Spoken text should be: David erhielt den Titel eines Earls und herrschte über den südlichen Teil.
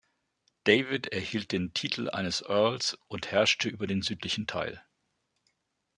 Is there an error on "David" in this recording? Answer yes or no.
no